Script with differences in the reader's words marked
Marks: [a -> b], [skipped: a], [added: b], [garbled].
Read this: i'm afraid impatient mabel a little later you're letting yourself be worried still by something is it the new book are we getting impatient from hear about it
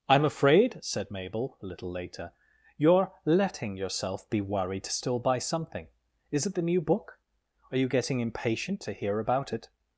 i'm afraid [impatient -> said] mabel a little later you're letting yourself be worried still by something is it the new book are [we -> you] getting impatient [from -> to] hear about it